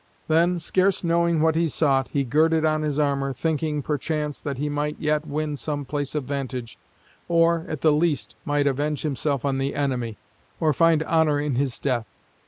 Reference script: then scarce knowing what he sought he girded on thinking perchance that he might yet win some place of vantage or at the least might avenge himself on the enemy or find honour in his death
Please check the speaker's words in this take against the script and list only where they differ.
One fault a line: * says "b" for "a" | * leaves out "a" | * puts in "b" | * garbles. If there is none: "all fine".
* puts in "his armour"